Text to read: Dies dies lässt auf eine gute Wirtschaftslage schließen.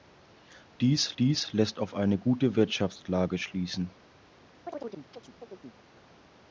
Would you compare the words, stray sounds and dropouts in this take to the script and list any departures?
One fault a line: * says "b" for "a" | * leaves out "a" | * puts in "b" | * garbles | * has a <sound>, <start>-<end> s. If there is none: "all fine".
* has a chirp, 4.7-5.8 s